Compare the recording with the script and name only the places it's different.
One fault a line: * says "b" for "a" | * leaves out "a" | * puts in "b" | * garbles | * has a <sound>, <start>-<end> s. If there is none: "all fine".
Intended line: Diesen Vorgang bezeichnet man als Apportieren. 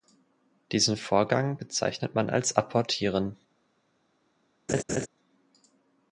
* has a laugh, 4.7-5.1 s